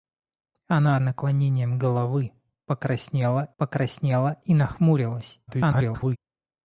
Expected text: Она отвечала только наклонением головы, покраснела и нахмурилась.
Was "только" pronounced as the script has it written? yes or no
no